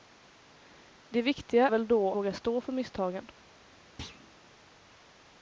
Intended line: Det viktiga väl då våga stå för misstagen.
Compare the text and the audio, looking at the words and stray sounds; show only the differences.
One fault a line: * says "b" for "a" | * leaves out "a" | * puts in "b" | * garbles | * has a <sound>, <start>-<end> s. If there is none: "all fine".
* has a thud, 4.0-4.3 s